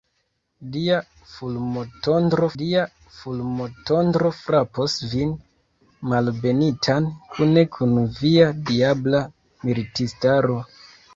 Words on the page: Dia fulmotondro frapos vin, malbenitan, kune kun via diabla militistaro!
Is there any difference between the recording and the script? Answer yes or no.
yes